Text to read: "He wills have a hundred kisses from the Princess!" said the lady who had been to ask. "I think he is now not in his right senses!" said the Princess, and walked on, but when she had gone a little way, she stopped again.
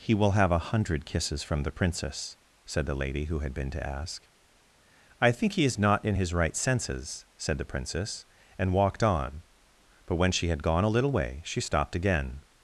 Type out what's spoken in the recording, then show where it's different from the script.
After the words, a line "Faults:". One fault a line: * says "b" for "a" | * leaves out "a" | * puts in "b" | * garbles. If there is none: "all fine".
"He will have a hundred kisses from the Princess!" said the lady who had been to ask. "I think he is not in his right senses!" said the Princess, and walked on, but when she had gone a little way, she stopped again.
Faults:
* says "will" for "wills"
* leaves out "now"